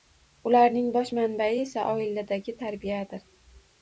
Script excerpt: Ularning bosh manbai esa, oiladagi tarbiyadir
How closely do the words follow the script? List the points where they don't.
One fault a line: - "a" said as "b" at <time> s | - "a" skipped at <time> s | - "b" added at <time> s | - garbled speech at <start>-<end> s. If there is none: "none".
none